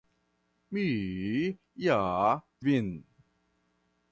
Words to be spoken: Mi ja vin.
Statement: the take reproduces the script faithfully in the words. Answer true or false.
true